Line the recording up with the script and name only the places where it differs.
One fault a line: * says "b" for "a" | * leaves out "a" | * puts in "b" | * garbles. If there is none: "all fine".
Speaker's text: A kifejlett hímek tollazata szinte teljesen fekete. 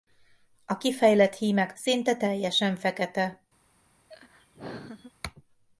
* leaves out "tollazata"